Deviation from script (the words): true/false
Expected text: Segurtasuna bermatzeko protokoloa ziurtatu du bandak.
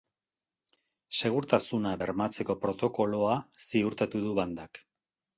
false